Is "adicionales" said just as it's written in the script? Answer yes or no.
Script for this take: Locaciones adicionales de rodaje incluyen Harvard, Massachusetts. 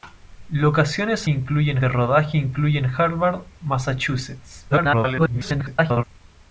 no